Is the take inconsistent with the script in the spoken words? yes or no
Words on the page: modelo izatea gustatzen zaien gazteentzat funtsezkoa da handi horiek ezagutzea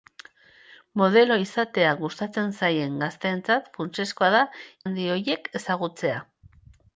no